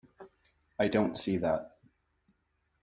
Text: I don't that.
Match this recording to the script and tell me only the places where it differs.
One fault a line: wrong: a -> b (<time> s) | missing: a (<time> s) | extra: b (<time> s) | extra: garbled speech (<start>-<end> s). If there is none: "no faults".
extra: see (1.2 s)